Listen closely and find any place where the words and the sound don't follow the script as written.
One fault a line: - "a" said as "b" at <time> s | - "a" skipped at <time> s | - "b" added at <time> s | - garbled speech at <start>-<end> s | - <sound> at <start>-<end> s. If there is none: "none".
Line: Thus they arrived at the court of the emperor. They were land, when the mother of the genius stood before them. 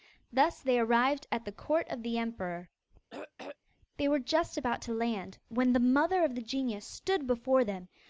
- throat clearing at 3.1-3.6 s
- "just about to" added at 4.2 s